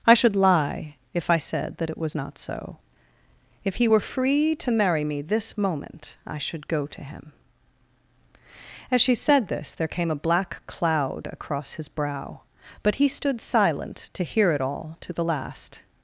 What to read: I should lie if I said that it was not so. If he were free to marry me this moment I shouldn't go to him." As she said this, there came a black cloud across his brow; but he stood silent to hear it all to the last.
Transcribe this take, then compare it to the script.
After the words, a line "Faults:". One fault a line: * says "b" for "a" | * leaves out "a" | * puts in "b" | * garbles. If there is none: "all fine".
I should lie if I said that it was not so. If he were free to marry me this moment I should go to him." As she said this, there came a black cloud across his brow; but he stood silent to hear it all to the last.
Faults:
* says "should" for "shouldn't"